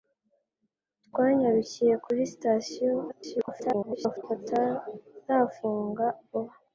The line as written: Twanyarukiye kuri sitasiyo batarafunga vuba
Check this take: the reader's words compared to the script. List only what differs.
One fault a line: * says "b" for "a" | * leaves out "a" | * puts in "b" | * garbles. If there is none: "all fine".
* garbles